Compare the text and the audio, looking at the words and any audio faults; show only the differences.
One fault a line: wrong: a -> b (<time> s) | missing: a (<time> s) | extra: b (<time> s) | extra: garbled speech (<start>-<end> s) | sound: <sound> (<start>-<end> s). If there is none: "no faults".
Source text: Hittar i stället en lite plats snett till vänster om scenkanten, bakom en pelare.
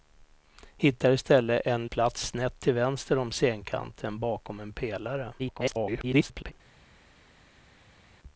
missing: lite (1.9 s)
extra: garbled speech (5.4-6.5 s)